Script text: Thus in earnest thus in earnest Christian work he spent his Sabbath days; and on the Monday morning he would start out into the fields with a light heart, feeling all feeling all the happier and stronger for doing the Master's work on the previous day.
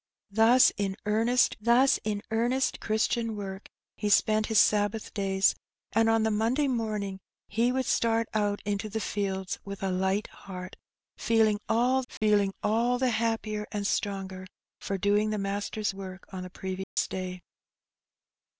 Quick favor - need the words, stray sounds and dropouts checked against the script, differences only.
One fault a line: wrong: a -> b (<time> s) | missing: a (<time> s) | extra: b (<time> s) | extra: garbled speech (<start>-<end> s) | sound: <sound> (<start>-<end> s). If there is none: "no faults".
sound: dropout (12.2-12.2 s)
sound: dropout (16.8-17.0 s)